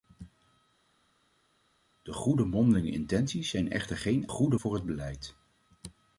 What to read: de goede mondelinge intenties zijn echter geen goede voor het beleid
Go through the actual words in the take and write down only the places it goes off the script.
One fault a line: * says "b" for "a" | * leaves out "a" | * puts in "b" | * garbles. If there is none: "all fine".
all fine